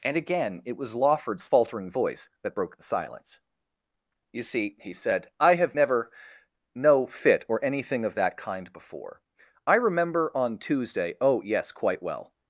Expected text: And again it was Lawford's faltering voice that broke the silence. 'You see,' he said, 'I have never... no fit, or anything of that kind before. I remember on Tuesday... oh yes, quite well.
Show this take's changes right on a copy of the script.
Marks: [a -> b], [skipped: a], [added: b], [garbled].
And again it was Lawford's faltering voice that broke the silence. 'You see,' he said, 'I have never... no fit, or anything of that kind before. I remember on Tuesday... oh yes, quite well.